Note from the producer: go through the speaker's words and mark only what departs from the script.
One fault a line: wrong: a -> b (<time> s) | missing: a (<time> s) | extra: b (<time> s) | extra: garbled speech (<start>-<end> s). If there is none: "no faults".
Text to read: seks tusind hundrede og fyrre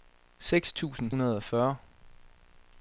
no faults